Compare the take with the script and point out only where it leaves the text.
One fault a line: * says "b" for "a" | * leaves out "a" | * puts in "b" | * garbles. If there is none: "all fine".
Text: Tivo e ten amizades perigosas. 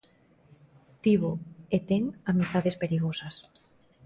all fine